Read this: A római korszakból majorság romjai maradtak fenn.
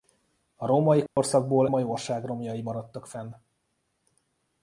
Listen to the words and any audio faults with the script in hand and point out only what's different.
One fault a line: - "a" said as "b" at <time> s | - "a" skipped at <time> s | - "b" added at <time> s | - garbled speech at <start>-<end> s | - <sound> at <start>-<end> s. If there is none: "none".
- dropout at 1.1-1.2 s